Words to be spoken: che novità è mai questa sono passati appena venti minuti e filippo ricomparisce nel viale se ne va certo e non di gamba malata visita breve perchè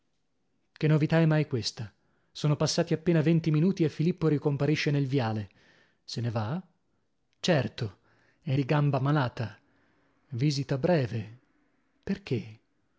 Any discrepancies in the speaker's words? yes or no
yes